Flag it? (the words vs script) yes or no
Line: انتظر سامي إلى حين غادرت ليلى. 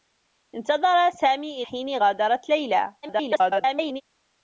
yes